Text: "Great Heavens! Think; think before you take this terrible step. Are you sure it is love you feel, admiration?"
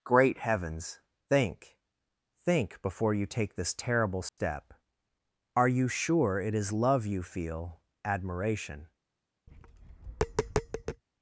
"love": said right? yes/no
yes